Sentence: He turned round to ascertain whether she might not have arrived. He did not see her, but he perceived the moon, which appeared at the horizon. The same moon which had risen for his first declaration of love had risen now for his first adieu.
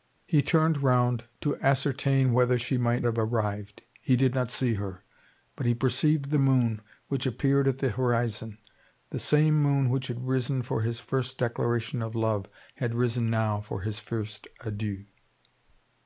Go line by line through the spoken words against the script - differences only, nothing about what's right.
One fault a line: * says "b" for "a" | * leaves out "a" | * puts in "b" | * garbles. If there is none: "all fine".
* leaves out "not"